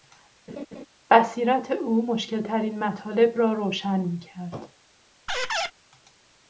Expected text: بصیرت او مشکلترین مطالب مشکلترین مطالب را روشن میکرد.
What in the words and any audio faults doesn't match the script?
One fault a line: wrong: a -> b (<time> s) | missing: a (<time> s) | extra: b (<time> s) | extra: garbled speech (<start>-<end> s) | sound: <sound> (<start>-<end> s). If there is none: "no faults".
sound: laugh (0.5-0.9 s)
missing: مشکلترین مطالب (3.4 s)
sound: squeak (5.3-5.7 s)